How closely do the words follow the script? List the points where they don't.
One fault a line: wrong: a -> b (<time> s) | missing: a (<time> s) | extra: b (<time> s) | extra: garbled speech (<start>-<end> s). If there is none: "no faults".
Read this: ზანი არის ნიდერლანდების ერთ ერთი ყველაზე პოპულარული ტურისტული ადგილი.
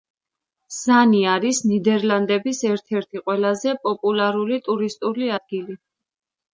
no faults